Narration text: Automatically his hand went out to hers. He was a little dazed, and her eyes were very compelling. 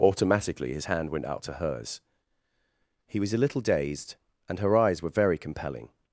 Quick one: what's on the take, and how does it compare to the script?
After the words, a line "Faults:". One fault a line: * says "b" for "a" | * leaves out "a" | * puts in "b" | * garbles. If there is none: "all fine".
Automatically his hand went out to hers. He was a little dazed, and her eyes were very compelling.
Faults:
all fine